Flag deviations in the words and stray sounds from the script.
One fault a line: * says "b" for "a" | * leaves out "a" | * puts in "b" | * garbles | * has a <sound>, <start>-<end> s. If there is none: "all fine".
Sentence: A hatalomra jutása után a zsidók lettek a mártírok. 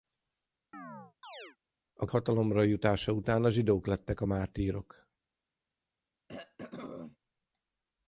* has a chirp, 0.7-1.6 s
* has a throat clearing, 6.3-7.2 s